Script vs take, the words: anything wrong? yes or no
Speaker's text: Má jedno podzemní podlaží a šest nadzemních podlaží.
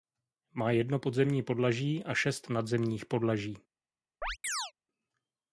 no